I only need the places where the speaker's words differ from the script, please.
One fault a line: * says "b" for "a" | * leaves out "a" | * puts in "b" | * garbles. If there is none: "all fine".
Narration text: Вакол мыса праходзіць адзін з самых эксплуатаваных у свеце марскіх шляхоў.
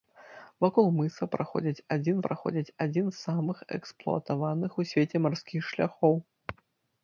* puts in "праходзіць адзін"